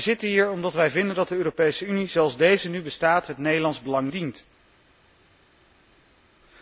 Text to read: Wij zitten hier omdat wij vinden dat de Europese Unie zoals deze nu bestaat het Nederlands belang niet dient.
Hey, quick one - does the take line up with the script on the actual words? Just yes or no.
no